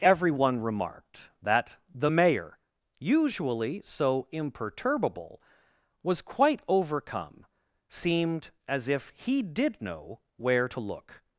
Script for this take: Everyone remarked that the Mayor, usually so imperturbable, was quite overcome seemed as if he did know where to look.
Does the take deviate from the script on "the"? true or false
false